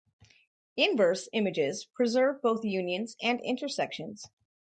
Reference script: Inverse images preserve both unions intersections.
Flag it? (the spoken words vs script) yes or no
yes